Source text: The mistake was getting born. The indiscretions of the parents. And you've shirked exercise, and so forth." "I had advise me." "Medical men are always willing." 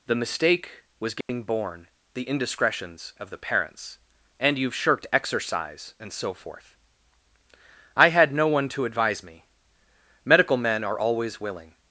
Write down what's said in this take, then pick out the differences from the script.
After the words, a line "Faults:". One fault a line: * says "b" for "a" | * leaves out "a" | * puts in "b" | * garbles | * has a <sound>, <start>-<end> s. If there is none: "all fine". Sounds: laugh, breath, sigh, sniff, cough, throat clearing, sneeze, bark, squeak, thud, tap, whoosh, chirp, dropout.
The mistake was getting born. The indiscretions of the parents. And you've shirked exercise, and so forth." "I had no one to advise me." "Medical men are always willing."
Faults:
* has a dropout, 1.2-1.3 s
* puts in "no one to"